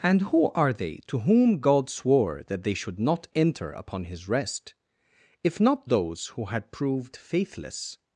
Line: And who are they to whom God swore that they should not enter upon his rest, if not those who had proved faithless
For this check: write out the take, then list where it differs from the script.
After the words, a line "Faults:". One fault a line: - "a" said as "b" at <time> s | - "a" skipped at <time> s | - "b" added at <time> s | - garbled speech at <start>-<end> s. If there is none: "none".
And who are they to whom God swore that they should not enter upon his rest, if not those who had proved faithless
Faults:
none